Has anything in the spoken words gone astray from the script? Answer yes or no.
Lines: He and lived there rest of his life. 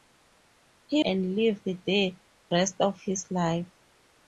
no